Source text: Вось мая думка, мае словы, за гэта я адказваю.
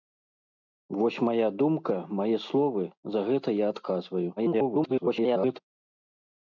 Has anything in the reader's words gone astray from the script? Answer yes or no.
yes